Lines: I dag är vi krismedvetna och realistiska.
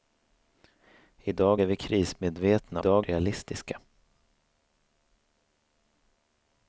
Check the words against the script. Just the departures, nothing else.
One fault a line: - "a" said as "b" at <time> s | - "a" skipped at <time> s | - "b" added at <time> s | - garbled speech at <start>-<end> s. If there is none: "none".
- "och" said as "dag" at 2.8 s